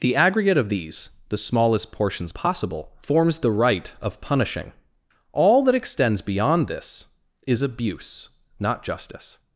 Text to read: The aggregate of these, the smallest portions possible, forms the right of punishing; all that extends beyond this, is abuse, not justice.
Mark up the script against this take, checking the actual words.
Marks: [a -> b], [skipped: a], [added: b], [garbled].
The aggregate of these, the smallest portions possible, forms the right of punishing; all that extends beyond this, is abuse, not justice.